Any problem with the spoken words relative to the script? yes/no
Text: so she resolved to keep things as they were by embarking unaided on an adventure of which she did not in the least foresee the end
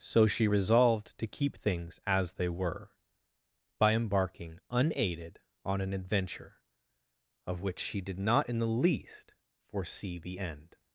no